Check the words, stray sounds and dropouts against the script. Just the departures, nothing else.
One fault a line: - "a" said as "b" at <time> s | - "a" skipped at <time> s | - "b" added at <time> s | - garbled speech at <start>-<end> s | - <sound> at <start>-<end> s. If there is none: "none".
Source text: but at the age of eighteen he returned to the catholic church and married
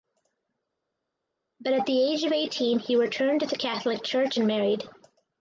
none